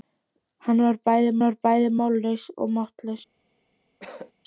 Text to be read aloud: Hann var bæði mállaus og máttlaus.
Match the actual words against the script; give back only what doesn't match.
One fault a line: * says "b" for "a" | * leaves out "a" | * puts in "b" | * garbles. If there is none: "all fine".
* puts in "var bæði"